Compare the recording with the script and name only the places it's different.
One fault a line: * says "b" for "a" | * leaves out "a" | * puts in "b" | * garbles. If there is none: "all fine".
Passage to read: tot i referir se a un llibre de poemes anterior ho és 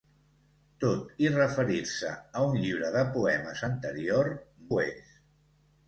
all fine